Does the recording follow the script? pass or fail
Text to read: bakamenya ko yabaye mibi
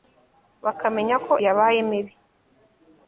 pass